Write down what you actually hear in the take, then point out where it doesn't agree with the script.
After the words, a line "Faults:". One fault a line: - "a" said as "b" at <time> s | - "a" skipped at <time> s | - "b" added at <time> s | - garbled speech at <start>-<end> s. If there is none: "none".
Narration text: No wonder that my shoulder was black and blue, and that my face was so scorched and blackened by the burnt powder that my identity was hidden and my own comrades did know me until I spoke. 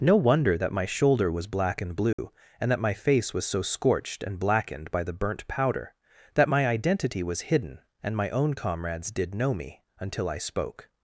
No wonder that my shoulder was black and blue, and that my face was so scorched and blackened by the burnt powder that my identity was hidden and my own comrades did know me until I spoke.
Faults:
none